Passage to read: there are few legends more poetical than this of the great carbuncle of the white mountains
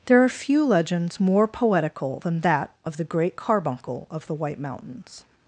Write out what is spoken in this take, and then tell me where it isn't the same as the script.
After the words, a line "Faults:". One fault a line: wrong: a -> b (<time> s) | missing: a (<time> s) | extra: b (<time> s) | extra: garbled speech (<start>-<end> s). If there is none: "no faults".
there are few legends more poetical than that of the great carbuncle of the white mountains
Faults:
wrong: this -> that (2.4 s)